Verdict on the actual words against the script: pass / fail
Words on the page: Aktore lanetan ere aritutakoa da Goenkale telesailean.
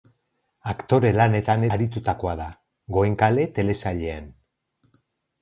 fail